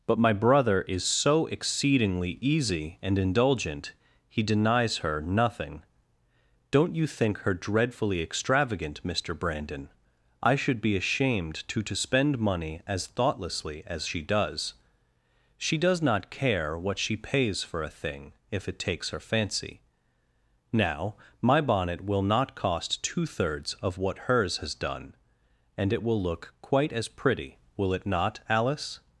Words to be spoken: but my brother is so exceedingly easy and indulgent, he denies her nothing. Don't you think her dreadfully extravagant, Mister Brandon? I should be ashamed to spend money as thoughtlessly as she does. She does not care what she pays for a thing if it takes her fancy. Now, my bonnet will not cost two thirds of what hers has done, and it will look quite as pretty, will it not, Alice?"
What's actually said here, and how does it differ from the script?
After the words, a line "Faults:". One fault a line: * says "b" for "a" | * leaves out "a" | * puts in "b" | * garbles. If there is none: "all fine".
but my brother is so exceedingly easy and indulgent, he denies her nothing. Don't you think her dreadfully extravagant, Mister Brandon? I should be ashamed to to spend money as thoughtlessly as she does. She does not care what she pays for a thing if it takes her fancy. Now, my bonnet will not cost two thirds of what hers has done, and it will look quite as pretty, will it not, Alice?"
Faults:
* puts in "to"